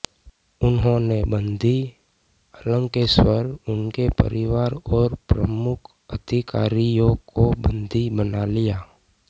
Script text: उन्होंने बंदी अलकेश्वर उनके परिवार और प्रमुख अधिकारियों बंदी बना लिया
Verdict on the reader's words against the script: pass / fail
fail